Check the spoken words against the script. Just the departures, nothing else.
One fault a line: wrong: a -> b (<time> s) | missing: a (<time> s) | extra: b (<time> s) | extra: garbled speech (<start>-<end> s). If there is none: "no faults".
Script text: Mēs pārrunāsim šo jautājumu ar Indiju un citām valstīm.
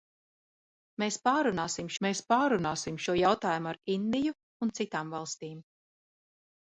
extra: mēs pārrunāsim (2.1 s)